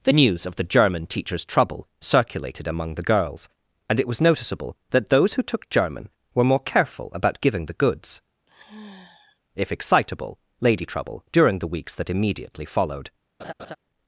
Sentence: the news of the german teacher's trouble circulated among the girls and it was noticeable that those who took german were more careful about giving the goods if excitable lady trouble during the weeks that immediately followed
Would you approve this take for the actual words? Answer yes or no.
yes